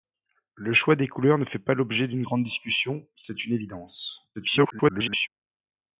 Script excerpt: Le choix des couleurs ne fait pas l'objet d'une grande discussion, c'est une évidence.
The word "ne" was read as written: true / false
true